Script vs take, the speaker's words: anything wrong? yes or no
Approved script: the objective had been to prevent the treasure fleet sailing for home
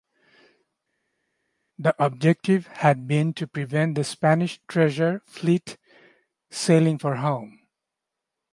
yes